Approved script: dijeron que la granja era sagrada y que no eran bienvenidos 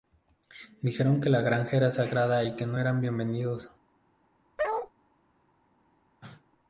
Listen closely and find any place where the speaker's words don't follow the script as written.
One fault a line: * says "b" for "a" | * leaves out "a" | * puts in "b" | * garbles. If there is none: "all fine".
all fine